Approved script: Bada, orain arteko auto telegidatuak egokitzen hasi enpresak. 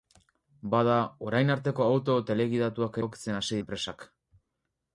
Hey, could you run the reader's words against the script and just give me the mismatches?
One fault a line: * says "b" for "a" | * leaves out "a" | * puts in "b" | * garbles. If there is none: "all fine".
all fine